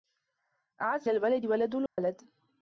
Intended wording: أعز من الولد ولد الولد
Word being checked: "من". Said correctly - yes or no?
no